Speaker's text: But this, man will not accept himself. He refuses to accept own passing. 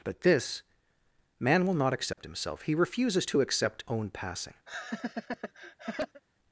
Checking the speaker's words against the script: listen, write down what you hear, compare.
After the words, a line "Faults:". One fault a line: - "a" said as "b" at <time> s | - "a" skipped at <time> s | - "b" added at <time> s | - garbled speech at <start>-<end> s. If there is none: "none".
But this, man will not accept himself. He refuses to accept own passing.
Faults:
none